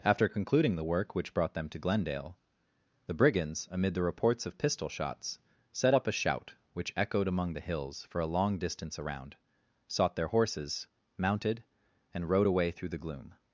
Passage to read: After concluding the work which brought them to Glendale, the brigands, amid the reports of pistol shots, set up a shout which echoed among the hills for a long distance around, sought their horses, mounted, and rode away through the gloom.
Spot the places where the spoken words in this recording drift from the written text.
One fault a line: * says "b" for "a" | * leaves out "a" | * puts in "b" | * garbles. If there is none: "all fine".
all fine